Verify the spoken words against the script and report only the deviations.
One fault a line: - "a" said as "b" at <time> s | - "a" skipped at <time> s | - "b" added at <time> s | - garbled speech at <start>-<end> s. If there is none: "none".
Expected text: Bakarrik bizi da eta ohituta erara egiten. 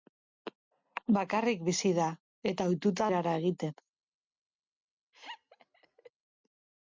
none